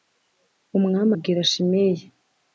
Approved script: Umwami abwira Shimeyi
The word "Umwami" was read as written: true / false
true